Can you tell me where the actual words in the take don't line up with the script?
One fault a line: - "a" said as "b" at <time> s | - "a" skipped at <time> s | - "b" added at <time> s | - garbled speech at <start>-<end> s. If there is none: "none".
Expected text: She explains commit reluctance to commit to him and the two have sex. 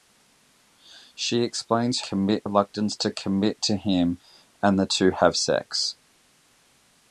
none